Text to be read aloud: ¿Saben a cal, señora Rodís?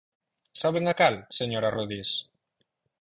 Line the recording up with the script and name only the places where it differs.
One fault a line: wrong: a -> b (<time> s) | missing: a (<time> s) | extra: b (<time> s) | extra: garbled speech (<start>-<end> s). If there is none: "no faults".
no faults